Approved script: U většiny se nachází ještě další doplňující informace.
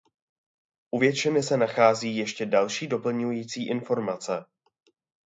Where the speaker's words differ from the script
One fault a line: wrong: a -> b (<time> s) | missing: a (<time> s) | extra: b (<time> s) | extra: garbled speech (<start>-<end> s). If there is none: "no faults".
no faults